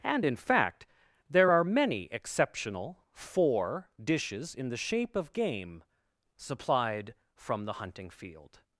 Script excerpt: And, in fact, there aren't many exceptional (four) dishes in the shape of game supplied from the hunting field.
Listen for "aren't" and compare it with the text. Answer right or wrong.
wrong